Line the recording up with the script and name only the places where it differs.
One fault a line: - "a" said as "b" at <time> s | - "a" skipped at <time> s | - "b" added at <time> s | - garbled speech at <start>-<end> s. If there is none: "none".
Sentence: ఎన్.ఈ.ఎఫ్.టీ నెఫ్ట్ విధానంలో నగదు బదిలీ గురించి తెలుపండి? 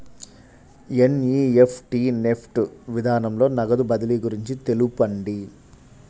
none